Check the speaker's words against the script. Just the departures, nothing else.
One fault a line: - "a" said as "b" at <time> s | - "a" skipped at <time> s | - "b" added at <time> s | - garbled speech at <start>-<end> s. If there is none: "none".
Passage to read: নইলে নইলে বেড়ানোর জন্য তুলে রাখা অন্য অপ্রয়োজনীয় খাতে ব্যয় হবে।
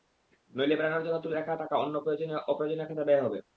- "নইলে" skipped at 0.8 s
- "টাকা" added at 1.5 s